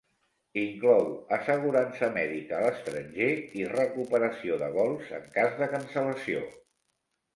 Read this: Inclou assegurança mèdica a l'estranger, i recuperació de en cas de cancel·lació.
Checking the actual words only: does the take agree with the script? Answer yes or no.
no